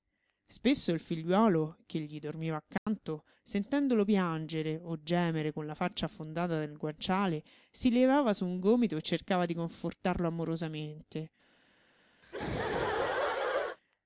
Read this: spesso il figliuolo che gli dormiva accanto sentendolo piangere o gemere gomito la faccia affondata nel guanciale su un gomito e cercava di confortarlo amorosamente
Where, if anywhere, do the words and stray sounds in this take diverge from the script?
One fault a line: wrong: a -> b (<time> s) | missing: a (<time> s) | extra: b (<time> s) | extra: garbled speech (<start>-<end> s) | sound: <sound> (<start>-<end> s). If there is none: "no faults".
sound: dropout (2.8-2.9 s)
wrong: gomito -> con (5.5 s)
extra: si levava (7.7 s)
sound: laugh (12.2-13.8 s)